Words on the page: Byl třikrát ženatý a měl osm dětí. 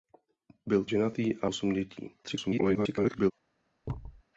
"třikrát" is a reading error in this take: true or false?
true